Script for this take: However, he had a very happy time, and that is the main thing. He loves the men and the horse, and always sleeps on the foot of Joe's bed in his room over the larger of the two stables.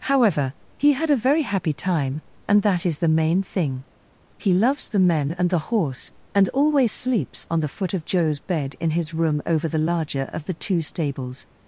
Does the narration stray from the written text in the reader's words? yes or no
no